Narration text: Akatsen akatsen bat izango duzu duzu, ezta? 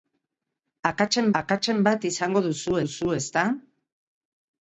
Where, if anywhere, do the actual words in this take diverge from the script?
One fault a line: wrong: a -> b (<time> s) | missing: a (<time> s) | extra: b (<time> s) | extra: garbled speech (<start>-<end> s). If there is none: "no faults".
no faults